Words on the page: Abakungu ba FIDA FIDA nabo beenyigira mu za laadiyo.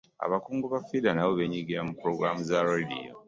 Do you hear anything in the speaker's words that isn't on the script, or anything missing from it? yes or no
yes